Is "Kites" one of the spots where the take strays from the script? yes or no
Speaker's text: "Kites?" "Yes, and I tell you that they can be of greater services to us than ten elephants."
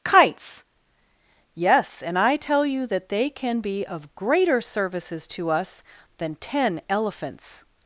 no